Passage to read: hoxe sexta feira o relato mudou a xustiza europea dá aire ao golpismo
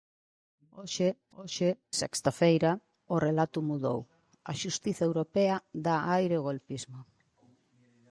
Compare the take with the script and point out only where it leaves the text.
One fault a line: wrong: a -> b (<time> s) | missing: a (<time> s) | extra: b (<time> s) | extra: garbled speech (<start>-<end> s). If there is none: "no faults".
extra: hoxe (1.4 s)